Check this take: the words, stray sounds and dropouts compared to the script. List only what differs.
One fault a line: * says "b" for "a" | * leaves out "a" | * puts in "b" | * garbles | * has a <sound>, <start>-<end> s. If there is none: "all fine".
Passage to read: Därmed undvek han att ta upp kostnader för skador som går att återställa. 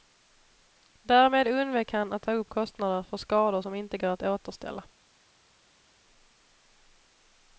* puts in "inte"